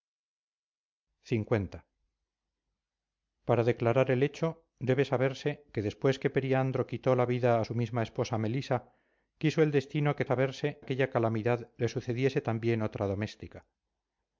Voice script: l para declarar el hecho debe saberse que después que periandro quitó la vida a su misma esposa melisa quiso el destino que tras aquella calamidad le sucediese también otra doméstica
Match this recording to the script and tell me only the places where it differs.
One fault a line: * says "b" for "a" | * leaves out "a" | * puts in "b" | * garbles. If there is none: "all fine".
* says "saberse" for "tras"